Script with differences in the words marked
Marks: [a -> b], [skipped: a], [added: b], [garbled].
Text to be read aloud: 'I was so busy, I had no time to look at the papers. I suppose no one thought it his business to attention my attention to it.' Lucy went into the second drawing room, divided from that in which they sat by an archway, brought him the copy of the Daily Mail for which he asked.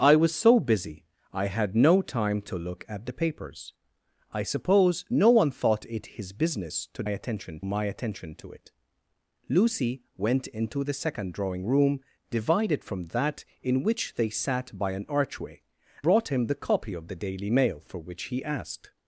'I was so busy, I had no time to look at the papers. I suppose no one thought it his business to attention my attention to it.' Lucy went into the second drawing room, divided from that in which they sat by an archway, brought him the copy of the Daily Mail for which he asked.